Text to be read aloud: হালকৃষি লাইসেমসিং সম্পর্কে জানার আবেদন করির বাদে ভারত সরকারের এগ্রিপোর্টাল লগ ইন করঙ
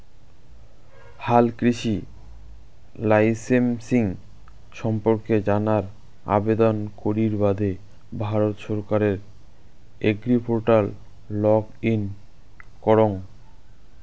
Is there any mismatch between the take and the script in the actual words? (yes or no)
no